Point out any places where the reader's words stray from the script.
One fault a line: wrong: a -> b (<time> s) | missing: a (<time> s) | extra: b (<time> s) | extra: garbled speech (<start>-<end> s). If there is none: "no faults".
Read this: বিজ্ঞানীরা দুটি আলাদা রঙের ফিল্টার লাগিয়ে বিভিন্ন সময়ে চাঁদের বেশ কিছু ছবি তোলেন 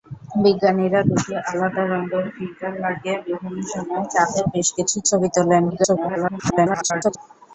extra: garbled speech (5.7-7.2 s)